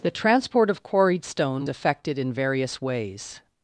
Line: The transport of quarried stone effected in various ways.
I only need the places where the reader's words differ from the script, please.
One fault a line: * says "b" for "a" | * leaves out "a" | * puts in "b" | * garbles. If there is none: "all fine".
all fine